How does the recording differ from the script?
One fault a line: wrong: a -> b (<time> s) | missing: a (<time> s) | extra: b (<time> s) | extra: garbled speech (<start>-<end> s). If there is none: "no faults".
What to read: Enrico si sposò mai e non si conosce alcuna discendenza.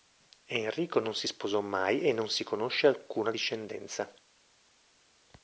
extra: non (1.0 s)